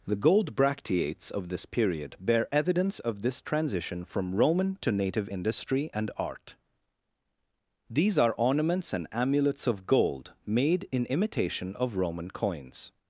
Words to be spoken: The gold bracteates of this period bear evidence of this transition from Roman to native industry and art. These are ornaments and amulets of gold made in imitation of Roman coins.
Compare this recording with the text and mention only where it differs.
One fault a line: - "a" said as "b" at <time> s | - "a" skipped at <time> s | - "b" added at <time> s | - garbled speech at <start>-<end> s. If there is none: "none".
none